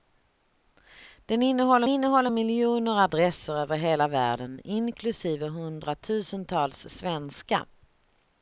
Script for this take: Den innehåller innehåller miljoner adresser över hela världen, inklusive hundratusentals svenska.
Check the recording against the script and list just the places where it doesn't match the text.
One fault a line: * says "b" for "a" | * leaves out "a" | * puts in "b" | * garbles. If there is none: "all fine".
all fine